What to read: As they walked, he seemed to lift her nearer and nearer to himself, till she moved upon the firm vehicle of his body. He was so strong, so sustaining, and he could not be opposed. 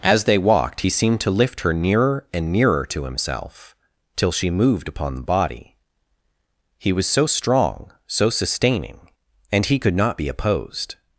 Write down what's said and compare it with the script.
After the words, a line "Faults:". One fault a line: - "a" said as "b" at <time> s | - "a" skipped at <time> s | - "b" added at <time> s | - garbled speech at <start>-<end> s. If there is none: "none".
As they walked, he seemed to lift her nearer and nearer to himself, till she moved upon the body. He was so strong, so sustaining, and he could not be opposed.
Faults:
- "firm vehicle of his" skipped at 5.2 s